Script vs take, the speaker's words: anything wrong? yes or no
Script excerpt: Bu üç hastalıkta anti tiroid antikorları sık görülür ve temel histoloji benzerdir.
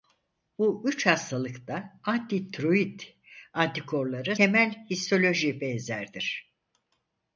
yes